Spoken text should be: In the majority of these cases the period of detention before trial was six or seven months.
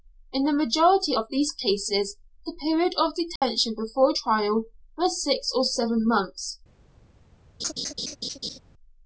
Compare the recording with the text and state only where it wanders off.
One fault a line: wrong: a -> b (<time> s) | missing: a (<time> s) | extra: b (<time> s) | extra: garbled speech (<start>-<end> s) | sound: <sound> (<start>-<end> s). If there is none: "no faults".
sound: dropout (3.4-3.4 s)
sound: laugh (7.6-8.6 s)